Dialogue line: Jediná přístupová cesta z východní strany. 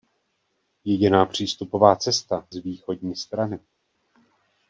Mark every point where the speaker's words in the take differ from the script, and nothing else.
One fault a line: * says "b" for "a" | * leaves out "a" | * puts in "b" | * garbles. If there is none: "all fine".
all fine